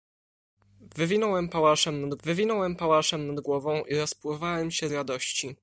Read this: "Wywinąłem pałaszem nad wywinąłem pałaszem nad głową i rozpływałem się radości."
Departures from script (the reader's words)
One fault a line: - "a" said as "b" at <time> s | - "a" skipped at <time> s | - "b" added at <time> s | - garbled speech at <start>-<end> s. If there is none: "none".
none